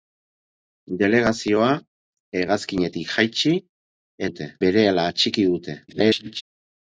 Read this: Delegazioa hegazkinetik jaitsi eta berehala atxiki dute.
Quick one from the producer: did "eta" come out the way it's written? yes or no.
no